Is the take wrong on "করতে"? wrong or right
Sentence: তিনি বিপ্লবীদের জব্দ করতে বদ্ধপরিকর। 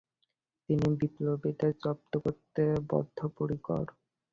right